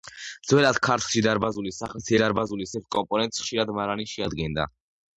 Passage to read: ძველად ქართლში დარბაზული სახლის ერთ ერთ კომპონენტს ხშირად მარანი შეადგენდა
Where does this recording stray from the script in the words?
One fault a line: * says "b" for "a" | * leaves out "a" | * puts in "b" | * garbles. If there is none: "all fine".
* says "დარბაზული" for "ერთ"